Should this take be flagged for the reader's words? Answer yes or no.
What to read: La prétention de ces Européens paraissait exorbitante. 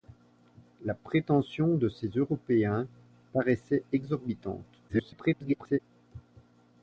yes